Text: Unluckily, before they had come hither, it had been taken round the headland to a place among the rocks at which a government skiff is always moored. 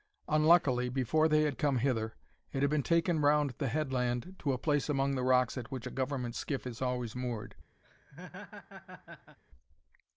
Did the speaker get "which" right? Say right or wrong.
right